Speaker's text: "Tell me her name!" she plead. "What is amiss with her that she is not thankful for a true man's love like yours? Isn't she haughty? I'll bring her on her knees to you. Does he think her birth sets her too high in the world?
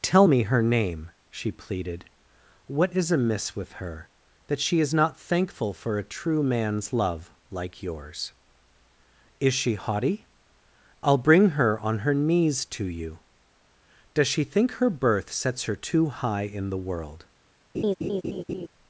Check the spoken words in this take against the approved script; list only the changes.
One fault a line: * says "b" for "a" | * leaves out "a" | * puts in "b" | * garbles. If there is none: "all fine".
* says "pleaded" for "plead"
* says "Is" for "Isn't"
* says "she" for "he"